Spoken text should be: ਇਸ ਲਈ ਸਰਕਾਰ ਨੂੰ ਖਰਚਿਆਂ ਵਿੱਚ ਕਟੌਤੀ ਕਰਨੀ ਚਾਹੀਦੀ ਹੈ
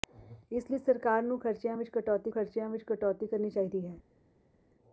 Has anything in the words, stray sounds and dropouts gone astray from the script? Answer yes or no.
yes